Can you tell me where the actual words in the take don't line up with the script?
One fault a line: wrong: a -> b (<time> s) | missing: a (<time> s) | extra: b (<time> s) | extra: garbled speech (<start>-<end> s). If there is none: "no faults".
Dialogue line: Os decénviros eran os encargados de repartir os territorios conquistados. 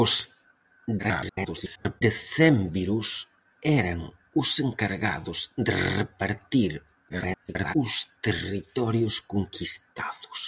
extra: garbled speech (1.0-2.0 s)
extra: garbled speech (7.1-7.7 s)